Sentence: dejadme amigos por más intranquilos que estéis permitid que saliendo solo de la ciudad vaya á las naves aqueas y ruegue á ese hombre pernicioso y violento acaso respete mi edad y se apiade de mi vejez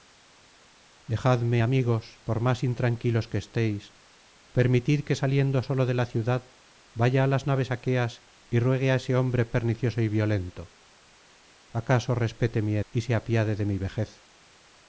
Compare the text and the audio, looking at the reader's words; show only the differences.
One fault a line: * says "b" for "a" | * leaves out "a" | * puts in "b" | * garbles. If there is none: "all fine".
* leaves out "edad"